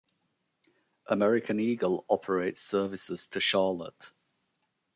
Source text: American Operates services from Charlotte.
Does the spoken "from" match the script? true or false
false